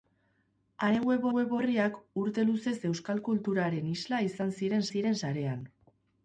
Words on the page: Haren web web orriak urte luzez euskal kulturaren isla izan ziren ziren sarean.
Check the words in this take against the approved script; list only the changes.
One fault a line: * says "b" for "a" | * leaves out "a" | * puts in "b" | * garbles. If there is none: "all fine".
all fine